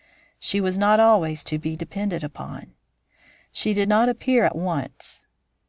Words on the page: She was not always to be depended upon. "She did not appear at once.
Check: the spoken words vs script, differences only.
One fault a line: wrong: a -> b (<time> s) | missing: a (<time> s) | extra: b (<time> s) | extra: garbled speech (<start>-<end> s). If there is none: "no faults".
no faults